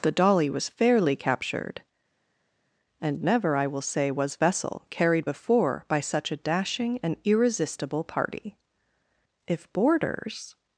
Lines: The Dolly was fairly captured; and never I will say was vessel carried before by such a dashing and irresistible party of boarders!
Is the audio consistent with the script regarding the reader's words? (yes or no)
no